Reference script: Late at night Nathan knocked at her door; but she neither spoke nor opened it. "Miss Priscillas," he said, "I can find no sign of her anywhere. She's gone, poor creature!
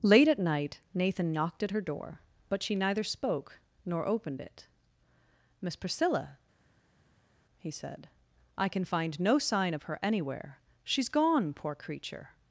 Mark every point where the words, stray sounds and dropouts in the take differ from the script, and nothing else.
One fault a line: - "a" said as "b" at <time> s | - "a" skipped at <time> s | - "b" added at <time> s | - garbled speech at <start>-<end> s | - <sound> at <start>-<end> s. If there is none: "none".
- "Priscillas" said as "Priscilla" at 5.8 s